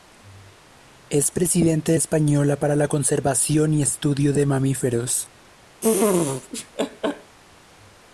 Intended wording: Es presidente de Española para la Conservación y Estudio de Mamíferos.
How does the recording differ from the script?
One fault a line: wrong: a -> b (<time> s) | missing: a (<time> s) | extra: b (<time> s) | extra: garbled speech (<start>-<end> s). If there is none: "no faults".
no faults